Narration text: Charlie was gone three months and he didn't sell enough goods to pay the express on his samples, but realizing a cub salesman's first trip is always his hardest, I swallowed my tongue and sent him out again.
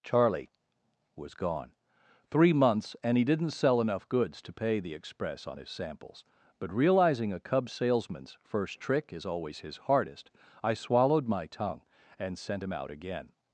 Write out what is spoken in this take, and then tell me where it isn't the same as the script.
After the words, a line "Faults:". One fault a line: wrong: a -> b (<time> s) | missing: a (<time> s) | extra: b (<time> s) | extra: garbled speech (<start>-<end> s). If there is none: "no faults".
Charlie was gone three months and he didn't sell enough goods to pay the express on his samples, but realizing a cub salesman's first trick is always his hardest, I swallowed my tongue and sent him out again.
Faults:
wrong: trip -> trick (8.8 s)